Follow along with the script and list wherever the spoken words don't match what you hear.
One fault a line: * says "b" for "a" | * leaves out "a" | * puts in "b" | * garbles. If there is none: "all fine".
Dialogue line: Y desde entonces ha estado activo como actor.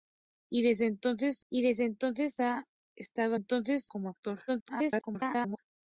* puts in "y desde entonces"
* says "entonces" for "activo"
* garbles